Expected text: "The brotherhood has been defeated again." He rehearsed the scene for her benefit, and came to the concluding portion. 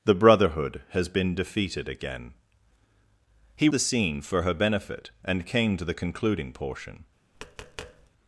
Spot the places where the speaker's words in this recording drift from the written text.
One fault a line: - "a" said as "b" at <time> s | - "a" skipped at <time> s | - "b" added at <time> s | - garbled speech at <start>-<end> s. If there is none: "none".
- "rehearsed" skipped at 3.7 s